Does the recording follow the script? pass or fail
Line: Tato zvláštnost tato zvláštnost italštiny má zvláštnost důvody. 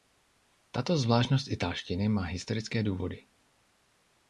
fail